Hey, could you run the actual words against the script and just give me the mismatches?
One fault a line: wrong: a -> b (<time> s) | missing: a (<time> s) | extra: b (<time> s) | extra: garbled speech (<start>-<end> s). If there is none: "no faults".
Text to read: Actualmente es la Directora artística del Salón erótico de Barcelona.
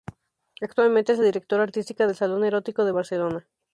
no faults